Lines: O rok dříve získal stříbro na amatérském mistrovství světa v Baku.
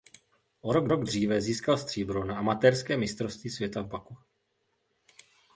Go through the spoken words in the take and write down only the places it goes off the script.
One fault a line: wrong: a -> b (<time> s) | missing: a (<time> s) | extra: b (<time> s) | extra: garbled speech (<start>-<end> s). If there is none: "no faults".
extra: rok (0.9 s)